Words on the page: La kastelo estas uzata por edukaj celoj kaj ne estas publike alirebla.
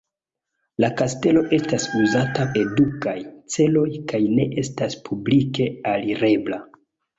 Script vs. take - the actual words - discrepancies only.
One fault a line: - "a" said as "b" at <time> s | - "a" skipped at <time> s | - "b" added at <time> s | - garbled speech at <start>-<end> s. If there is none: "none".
- "por" skipped at 2.5 s